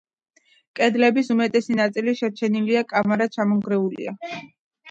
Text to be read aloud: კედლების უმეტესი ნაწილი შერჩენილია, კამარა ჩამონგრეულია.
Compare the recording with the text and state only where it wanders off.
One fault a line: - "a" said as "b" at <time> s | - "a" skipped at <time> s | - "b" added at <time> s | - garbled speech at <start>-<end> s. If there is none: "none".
none